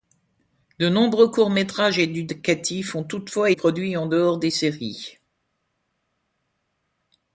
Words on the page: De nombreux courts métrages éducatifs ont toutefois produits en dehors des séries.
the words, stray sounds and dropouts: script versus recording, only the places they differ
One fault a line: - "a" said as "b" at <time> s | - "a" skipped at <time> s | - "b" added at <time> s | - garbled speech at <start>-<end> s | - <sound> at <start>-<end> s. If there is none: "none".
none